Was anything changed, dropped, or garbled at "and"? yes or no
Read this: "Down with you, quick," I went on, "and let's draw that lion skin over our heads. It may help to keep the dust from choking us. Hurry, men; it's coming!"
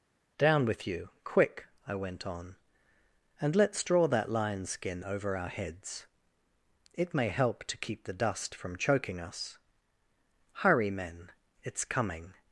no